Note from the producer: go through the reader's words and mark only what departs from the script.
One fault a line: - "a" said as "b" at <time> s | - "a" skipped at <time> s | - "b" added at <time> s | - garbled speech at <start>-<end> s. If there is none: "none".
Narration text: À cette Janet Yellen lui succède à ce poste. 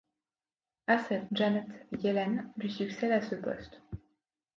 none